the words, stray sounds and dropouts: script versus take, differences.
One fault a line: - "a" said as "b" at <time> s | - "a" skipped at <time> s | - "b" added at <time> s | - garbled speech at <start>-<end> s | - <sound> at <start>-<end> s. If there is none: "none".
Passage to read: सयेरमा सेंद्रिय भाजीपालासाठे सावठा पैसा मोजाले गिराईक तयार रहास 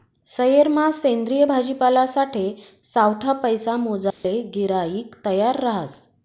- dropout at 4.1-4.2 s